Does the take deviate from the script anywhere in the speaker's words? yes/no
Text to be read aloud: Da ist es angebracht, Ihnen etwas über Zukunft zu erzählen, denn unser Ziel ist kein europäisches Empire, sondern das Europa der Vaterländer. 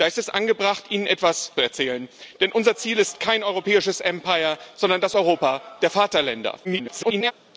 yes